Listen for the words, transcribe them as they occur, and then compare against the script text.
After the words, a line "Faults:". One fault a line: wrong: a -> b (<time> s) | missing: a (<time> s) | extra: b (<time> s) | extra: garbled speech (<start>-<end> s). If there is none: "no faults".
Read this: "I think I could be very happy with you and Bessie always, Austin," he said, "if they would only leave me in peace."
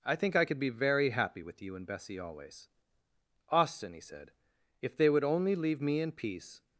"I think I could be very happy with you and Bessie always, Austin," he said, "if they would only leave me in peace."
Faults:
no faults